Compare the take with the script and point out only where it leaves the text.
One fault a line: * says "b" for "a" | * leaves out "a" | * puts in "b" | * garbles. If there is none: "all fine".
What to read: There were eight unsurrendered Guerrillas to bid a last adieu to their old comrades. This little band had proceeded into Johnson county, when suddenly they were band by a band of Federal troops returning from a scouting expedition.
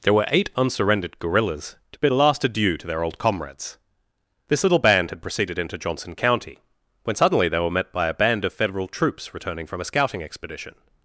* says "met" for "band"